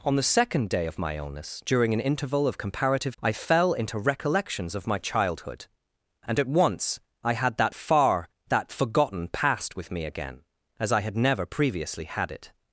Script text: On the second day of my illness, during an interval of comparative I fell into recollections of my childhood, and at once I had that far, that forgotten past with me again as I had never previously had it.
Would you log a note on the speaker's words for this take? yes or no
no